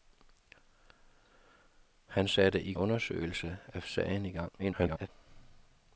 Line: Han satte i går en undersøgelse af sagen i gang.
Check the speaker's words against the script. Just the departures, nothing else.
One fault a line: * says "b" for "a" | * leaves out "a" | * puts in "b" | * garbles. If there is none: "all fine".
* leaves out "går en"
* garbles